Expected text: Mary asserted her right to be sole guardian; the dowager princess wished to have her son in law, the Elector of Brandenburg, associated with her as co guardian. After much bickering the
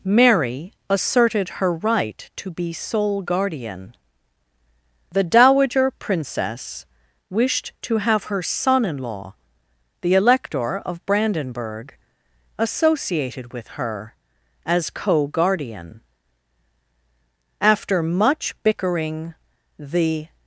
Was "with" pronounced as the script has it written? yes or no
yes